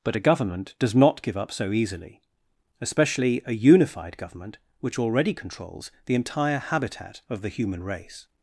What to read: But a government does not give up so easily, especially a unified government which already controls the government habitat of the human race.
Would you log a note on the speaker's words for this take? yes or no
yes